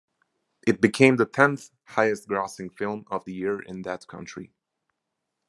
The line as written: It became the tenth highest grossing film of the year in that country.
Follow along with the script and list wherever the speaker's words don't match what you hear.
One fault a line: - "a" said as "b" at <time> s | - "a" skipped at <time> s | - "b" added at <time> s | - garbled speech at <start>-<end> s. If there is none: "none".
none